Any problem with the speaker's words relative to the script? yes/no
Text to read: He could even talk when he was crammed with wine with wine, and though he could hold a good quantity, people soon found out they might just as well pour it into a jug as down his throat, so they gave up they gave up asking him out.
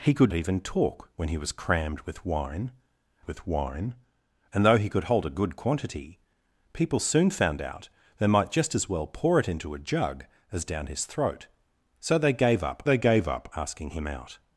no